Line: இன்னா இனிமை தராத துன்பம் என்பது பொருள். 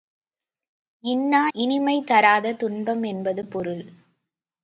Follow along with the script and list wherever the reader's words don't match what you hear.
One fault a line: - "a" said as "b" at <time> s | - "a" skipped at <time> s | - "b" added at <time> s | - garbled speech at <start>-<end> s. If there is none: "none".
none